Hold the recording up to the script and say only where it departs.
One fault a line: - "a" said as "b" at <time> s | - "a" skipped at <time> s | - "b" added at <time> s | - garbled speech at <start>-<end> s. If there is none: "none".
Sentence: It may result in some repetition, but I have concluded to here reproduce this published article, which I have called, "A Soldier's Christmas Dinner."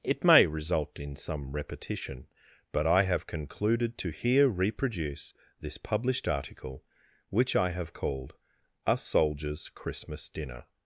none